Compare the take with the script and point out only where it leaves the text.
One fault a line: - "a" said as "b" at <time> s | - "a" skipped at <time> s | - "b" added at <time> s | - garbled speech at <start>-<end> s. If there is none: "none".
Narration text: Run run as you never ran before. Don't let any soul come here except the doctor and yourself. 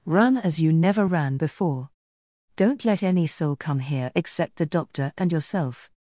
- "run" skipped at 0.4 s